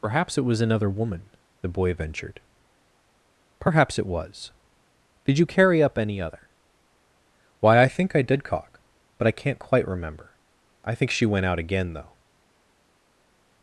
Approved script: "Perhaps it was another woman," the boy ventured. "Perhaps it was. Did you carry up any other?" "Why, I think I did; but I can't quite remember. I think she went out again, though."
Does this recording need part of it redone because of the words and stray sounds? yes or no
yes